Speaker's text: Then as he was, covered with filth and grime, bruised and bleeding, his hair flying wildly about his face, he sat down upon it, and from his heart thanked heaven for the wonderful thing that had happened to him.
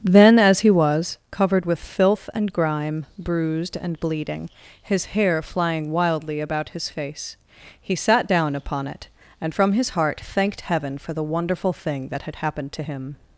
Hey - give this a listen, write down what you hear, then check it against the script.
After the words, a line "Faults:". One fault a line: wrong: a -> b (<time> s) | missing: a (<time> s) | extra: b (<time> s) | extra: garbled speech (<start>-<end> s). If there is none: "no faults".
Then as he was, covered with filth and grime, bruised and bleeding, his hair flying wildly about his face, he sat down upon it, and from his heart thanked heaven for the wonderful thing that had happened to him.
Faults:
no faults